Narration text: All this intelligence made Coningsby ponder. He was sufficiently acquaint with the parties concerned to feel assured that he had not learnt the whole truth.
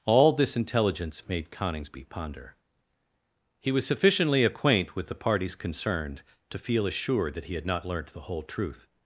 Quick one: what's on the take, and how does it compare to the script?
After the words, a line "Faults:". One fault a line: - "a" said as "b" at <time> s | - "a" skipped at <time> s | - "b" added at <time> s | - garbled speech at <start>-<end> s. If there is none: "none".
All this intelligence made Coningsby ponder. He was sufficiently acquaint with the parties concerned to feel assured that he had not learnt the whole truth.
Faults:
none